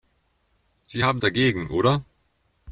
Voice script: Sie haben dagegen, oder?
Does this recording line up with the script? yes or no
yes